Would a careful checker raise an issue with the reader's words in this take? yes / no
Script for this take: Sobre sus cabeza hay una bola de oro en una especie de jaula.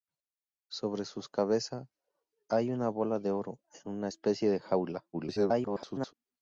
yes